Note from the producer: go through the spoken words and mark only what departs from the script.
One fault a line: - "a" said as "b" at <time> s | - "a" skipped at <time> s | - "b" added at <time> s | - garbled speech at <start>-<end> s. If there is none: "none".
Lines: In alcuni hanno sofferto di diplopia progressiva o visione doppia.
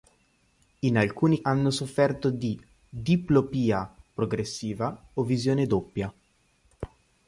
none